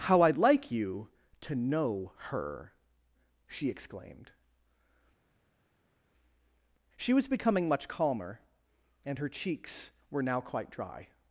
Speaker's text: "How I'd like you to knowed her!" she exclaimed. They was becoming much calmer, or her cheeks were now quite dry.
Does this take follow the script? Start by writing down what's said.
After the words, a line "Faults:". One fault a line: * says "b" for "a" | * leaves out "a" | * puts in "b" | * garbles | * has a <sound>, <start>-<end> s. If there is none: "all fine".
"How I'd like you to know her!" she exclaimed. She was becoming much calmer, and her cheeks were now quite dry.
Faults:
* says "know" for "knowed"
* says "She" for "They"
* says "and" for "or"